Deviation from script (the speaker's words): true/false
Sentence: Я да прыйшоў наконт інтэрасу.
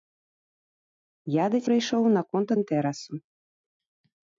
false